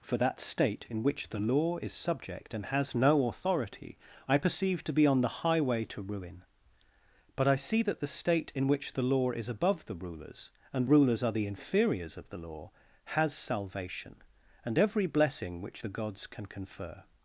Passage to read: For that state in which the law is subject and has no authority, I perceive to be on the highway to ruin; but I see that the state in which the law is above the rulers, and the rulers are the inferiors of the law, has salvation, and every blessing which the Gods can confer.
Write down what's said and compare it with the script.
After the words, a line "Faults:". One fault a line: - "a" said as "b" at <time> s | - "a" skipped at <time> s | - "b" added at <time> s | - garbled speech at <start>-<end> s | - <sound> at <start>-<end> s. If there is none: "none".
For that state in which the law is subject and has no authority, I perceive to be on the highway to ruin; but I see that the state in which the law is above the rulers, and rulers are the inferiors of the law, has salvation, and every blessing which the Gods can confer.
Faults:
- "the" skipped at 10.9 s